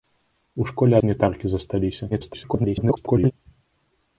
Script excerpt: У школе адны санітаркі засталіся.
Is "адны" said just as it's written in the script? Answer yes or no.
no